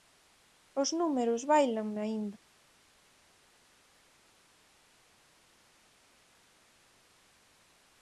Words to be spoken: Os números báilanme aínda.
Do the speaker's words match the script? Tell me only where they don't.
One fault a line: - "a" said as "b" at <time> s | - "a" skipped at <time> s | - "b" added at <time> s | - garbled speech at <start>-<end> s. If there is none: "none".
none